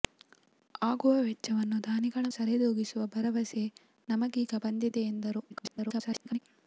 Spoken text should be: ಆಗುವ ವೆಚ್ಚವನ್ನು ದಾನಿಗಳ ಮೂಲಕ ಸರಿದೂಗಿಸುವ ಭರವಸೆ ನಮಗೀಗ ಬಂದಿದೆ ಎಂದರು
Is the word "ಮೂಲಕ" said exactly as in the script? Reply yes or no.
no